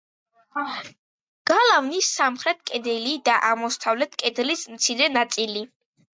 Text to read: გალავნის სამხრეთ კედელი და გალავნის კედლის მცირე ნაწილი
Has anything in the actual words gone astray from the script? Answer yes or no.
yes